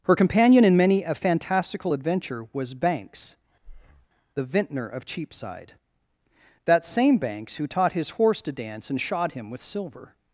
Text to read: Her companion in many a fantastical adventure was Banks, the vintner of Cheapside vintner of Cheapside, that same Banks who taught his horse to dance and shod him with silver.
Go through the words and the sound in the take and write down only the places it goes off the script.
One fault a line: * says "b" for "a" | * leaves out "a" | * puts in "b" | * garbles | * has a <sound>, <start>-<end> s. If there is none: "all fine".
* has a breath, 3.6-4.1 s
* leaves out "vintner of Cheapside"